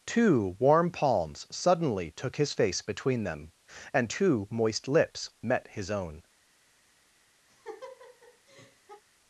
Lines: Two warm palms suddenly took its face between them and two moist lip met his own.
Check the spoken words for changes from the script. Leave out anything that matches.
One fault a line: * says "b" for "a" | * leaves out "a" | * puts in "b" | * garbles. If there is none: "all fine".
* says "his" for "its"
* says "lips" for "lip"